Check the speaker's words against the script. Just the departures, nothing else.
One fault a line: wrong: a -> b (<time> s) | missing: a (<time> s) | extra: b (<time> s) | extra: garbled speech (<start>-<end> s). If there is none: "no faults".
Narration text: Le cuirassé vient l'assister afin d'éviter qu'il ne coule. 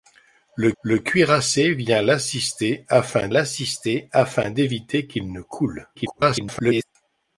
extra: le (0.8 s)
extra: l'assister afin (3.3 s)
extra: garbled speech (5.9-6.8 s)